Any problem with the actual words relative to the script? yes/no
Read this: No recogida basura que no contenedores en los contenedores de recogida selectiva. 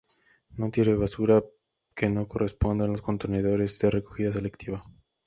yes